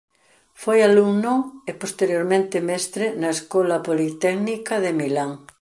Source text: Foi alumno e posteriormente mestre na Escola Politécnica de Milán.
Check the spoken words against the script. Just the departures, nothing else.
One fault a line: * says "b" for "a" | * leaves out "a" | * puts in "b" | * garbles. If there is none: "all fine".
all fine